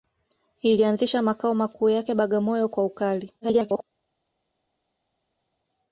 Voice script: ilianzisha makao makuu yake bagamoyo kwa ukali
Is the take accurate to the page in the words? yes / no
no